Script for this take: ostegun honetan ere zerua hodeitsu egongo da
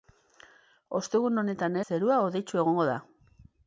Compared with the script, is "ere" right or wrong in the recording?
wrong